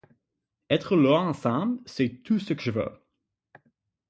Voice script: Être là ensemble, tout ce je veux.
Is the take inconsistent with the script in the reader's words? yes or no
yes